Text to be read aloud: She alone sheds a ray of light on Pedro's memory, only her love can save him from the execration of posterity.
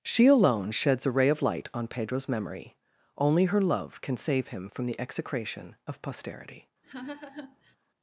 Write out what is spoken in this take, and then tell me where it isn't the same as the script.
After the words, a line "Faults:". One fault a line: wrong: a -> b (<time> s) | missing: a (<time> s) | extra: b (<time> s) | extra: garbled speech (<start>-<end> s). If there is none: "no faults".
She alone sheds a ray of light on Pedro's memory, only her love can save him from the execration of posterity.
Faults:
no faults